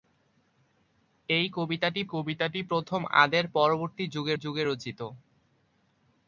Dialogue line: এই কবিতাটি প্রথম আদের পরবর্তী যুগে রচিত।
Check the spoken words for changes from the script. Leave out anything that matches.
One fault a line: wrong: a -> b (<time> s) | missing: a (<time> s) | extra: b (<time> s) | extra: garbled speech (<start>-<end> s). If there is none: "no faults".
extra: কবিতাটি (2.1 s)
extra: যুগে (4.4 s)